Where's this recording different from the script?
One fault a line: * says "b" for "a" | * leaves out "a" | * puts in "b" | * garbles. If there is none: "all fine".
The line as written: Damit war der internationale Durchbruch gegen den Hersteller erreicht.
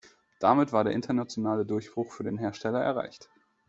* says "für" for "gegen"